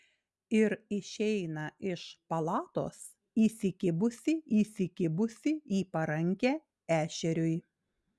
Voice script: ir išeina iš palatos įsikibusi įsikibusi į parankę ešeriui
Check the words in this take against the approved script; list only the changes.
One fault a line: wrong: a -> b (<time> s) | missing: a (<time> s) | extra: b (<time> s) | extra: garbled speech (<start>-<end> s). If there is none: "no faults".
no faults